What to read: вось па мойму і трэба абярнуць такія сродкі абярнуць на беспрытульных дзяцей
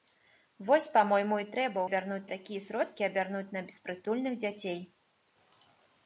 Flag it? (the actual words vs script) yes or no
no